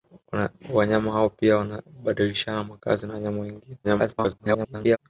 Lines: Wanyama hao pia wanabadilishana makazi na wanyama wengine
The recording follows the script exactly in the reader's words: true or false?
false